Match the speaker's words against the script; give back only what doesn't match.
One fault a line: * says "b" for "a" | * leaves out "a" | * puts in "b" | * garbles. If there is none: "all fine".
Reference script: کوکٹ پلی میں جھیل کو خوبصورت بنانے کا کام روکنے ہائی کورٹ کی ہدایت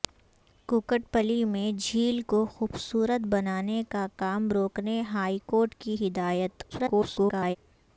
* garbles